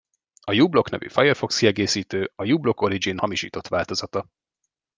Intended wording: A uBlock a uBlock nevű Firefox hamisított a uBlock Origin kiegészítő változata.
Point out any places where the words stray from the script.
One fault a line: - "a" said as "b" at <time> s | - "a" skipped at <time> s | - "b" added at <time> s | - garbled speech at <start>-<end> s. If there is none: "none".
- "a uBlock" skipped at 0.9 s
- "hamisított" said as "kiegészítő" at 1.6 s
- "kiegészítő" said as "hamisított" at 3.1 s